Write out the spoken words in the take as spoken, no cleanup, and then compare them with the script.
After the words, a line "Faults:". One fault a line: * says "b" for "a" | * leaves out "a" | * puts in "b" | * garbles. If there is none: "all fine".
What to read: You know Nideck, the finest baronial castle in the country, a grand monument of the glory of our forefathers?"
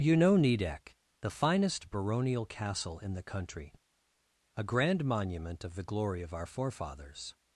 You know Nideck, the finest baronial castle in the country, a grand monument of the glory of our forefathers?"
Faults:
all fine